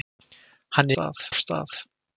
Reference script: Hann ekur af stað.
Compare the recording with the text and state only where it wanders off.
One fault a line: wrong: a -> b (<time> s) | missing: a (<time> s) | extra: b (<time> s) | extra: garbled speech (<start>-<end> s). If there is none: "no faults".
wrong: ekur -> stað (0.9 s)